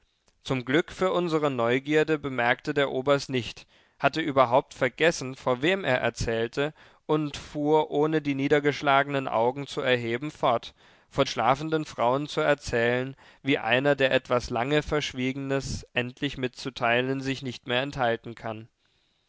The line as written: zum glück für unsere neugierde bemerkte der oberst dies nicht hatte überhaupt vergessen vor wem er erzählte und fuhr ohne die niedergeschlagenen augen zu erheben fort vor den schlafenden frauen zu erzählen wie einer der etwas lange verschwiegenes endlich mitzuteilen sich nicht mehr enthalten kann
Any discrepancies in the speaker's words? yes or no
yes